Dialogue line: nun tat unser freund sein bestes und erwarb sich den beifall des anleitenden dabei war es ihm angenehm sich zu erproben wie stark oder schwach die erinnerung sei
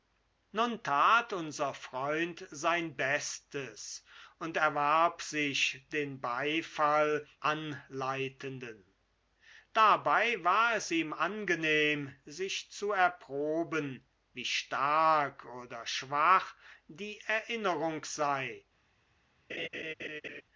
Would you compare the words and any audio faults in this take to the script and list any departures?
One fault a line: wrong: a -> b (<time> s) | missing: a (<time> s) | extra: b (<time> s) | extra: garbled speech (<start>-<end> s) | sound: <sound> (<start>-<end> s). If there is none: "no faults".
missing: des (7.3 s)
sound: laugh (19.5-20.4 s)